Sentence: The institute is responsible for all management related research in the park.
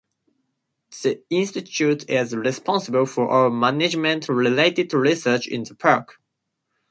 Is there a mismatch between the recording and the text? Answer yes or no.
no